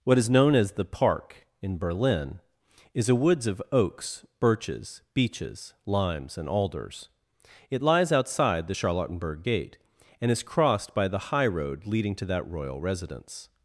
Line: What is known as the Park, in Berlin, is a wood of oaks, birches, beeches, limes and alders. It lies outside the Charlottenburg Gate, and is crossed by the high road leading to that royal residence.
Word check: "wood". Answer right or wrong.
wrong